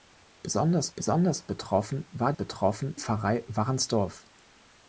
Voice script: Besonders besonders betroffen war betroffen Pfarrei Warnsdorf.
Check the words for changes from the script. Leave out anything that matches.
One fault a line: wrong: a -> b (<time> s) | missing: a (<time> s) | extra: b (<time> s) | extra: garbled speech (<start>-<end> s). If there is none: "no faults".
no faults